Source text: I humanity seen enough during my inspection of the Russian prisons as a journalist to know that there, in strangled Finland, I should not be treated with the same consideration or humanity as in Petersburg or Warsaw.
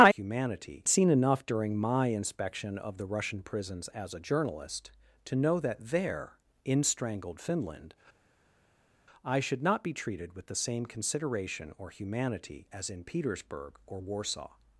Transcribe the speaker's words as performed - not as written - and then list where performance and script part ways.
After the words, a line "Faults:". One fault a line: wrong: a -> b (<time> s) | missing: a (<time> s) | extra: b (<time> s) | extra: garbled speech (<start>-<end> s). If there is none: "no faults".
I humanity seen enough during my inspection of the Russian prisons as a journalist to know that there, in strangled Finland, I should not be treated with the same consideration or humanity as in Petersburg or Warsaw.
Faults:
no faults